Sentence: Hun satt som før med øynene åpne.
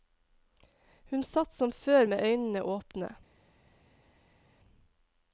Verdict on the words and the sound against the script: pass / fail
pass